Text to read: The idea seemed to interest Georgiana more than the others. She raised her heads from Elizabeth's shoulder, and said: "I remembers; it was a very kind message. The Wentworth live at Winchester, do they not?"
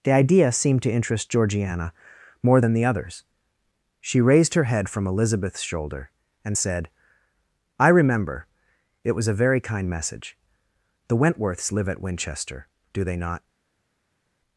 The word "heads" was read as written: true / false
false